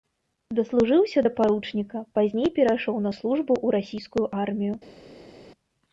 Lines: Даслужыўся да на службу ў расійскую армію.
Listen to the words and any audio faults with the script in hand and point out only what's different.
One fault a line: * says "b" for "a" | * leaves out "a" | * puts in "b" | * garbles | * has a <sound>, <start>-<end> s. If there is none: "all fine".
* puts in "паручніка пазней перайшоў"